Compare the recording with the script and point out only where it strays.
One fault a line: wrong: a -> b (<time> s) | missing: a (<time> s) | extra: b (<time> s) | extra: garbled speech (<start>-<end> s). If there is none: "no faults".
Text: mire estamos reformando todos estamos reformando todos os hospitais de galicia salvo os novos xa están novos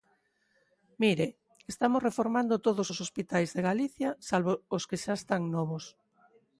missing: estamos reformando todos (2.9 s)
wrong: novos -> que (4.9 s)